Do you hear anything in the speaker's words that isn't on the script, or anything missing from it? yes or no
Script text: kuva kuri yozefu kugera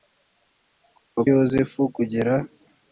yes